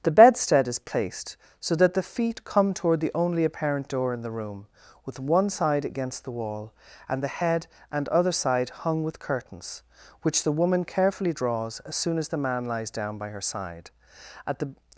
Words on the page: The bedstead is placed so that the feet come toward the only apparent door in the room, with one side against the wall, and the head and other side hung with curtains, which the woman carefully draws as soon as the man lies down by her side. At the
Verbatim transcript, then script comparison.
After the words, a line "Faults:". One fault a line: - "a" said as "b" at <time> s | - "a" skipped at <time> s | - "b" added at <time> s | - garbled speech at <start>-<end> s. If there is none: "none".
The bedstead is placed so that the feet come toward the only apparent door in the room, with one side against the wall, and the head and other side hung with curtains, which the woman carefully draws as soon as the man lies down by her side. At the
Faults:
none